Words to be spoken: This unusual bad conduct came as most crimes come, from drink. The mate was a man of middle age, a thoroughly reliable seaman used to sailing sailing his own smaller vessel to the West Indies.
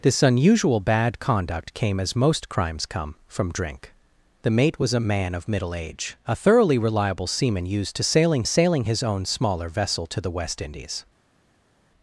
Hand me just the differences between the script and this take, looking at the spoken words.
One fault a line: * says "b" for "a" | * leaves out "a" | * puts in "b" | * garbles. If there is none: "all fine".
all fine